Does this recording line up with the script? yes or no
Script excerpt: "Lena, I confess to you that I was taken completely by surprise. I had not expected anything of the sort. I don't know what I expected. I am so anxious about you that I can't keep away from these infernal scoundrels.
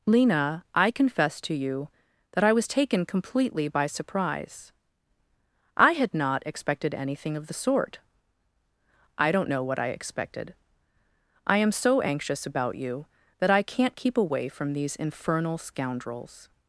yes